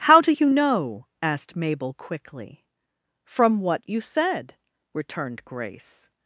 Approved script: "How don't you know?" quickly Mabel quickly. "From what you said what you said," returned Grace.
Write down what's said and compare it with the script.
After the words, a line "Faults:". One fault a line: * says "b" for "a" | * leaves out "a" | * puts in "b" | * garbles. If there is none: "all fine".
"How do you know?" asked Mabel quickly. "From what you said," returned Grace.
Faults:
* says "do" for "don't"
* says "asked" for "quickly"
* leaves out "what you said"